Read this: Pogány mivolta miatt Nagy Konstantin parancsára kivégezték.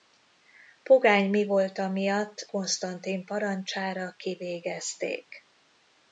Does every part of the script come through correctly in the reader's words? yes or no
no